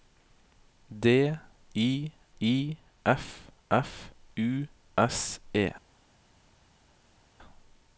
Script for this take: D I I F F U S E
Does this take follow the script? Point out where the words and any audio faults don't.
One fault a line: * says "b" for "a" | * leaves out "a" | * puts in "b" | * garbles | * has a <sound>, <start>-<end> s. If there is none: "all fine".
all fine